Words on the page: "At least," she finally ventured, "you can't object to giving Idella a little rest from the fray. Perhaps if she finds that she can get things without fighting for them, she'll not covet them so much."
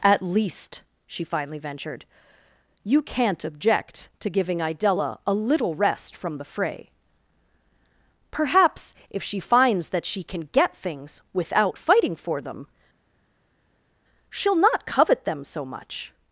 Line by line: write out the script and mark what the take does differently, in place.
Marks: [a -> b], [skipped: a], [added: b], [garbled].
"At least," she finally ventured, "you can't object to giving Idella a little rest from the fray. Perhaps if she finds that she can get things without fighting for them, she'll not covet them so much."